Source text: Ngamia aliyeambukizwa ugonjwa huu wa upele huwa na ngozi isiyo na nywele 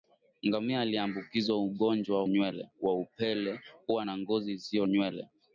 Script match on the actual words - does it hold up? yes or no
no